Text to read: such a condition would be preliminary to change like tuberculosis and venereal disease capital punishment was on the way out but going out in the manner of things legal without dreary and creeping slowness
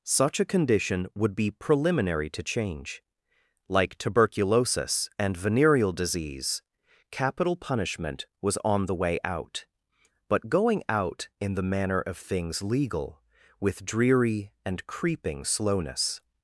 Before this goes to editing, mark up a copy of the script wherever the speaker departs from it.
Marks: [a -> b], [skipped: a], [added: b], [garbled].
such a condition would be preliminary to change like tuberculosis and venereal disease capital punishment was on the way out but going out in the manner of things legal [without -> with] dreary and creeping slowness